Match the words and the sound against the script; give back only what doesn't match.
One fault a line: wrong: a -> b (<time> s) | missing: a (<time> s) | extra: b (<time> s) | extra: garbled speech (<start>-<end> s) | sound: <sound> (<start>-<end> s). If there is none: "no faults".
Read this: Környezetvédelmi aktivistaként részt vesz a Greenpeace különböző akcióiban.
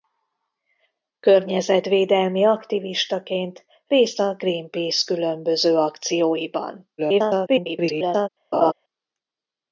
missing: vesz (4.2 s)
extra: garbled speech (7.0-8.3 s)
sound: laugh (8.5-8.7 s)